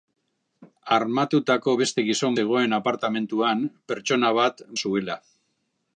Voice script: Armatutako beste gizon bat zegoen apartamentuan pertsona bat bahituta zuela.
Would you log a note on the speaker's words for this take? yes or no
yes